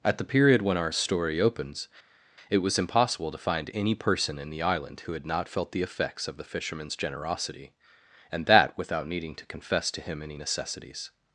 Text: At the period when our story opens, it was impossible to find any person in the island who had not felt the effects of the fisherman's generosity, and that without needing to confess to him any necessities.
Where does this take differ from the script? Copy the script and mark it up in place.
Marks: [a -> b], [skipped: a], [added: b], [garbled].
At the period when our story opens, it was impossible to find any person in the island who had not felt the effects of the fisherman's generosity, and that without needing to confess to him any necessities.